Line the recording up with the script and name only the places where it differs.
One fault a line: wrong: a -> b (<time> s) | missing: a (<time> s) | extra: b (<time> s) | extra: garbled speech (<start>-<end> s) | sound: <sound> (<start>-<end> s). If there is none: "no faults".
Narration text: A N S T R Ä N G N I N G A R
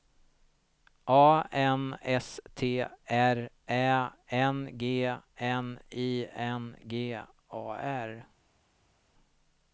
no faults